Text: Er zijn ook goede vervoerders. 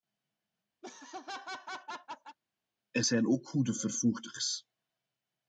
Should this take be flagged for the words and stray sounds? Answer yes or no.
yes